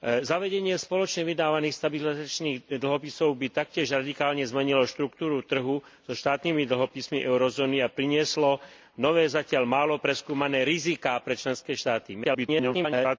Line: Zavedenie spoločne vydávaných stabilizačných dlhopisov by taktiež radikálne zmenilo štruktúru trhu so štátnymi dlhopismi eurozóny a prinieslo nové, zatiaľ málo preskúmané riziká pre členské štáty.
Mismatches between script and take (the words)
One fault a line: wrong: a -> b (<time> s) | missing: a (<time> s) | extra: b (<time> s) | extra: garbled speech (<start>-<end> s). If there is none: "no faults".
extra: garbled speech (12.2-13.2 s)